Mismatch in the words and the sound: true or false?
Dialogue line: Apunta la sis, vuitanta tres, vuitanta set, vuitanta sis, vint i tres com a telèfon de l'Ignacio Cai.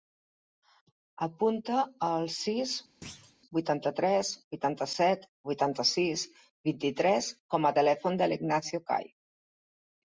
true